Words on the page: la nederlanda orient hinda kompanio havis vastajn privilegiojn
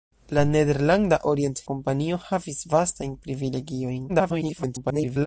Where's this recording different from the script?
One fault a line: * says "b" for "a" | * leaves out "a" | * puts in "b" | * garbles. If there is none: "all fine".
* leaves out "hinda"
* garbles